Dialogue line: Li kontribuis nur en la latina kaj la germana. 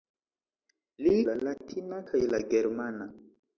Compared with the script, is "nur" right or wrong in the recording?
wrong